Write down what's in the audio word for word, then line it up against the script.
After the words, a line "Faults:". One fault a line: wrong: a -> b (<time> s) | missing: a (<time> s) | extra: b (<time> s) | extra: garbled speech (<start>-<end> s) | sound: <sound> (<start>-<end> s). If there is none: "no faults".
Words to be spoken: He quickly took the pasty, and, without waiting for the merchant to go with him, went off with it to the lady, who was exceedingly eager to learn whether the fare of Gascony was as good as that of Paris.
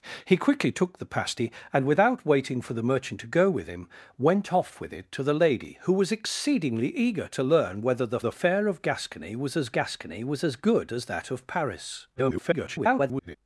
He quickly took the pasty, and, without waiting for the merchant to go with him, went off with it to the lady, who was exceedingly eager to learn whether the the fare of Gascony was as Gascony was as good as that of Paris. [garbled]
Faults:
extra: the (8.2 s)
extra: Gascony was as (9.7 s)
extra: garbled speech (12.2-13.4 s)